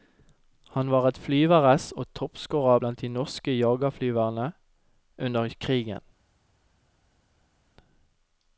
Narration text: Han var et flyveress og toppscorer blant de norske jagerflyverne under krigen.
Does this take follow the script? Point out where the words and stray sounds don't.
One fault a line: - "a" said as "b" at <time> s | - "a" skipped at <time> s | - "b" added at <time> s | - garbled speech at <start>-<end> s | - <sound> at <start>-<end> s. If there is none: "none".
none